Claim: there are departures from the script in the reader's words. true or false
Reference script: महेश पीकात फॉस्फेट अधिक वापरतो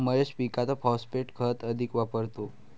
true